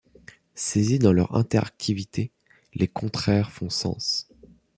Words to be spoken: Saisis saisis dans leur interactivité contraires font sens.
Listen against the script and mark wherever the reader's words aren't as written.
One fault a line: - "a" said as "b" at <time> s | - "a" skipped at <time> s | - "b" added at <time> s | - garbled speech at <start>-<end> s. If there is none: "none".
- "saisis" skipped at 1.0 s
- "les" added at 2.7 s